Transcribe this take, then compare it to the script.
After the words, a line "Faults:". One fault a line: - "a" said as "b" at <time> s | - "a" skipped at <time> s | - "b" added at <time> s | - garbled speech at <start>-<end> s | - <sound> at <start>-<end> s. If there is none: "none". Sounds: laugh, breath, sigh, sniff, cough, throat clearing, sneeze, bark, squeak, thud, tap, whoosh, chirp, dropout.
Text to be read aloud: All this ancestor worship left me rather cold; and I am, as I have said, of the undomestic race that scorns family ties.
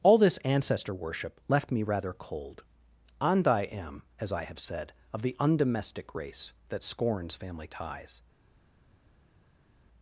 All this ancestor worship left me rather cold; and I am, as I have said, of the undomestic race that scorns family ties.
Faults:
none